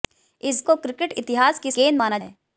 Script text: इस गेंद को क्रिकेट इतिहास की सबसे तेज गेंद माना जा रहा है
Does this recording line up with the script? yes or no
no